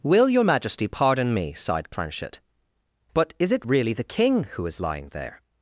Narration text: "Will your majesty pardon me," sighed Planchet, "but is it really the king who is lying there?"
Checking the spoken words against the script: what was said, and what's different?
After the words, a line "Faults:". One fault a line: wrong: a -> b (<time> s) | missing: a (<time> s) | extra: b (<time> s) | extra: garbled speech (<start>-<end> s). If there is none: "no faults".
"Will your majesty pardon me," sighed Planchet, "but is it really the king who is lying there?"
Faults:
no faults